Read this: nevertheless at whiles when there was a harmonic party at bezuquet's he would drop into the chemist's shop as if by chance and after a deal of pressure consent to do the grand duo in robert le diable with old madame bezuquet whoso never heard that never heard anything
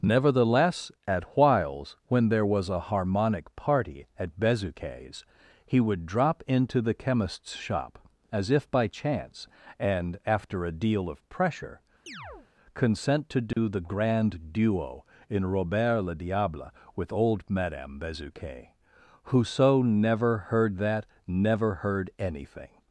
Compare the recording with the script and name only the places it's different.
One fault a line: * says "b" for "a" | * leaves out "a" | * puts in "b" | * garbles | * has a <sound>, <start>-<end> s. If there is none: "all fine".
* has a chirp, 12.1-12.5 s
* has a dropout, 13.5-13.6 s